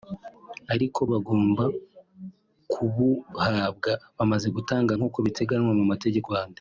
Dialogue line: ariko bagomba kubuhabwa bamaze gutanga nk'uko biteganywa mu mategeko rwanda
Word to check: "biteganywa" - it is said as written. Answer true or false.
true